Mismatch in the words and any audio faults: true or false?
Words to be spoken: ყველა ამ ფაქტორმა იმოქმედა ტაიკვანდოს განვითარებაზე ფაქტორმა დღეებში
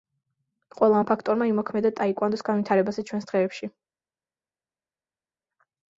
true